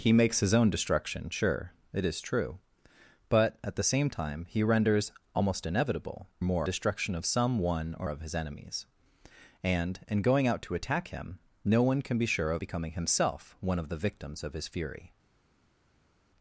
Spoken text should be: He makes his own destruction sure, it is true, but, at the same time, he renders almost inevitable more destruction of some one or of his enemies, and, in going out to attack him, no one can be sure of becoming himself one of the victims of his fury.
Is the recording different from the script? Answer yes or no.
no